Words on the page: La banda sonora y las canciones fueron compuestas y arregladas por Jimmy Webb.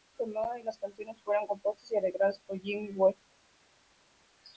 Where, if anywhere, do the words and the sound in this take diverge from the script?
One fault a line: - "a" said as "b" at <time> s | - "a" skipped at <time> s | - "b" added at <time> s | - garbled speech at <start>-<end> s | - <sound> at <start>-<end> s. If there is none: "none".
none